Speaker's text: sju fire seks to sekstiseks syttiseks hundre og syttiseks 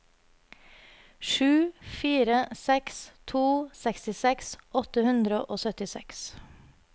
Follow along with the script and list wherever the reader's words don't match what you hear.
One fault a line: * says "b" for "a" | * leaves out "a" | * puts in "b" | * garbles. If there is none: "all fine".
* says "åtte" for "syttiseks"